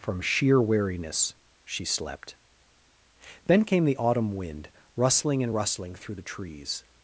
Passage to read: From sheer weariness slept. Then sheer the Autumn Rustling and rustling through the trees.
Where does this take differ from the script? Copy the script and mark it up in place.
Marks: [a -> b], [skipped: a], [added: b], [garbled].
From sheer weariness [added: she] slept. Then [sheer -> came] the Autumn [added: Wind] Rustling and rustling through the trees.